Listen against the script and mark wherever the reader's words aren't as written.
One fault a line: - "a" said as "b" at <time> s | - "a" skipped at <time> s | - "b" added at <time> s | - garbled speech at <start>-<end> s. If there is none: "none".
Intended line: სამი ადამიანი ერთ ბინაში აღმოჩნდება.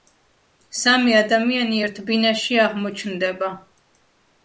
none